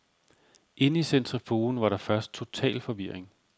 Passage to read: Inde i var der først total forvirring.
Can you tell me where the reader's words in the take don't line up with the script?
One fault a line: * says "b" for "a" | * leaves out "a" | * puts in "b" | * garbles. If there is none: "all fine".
* puts in "centrifugen"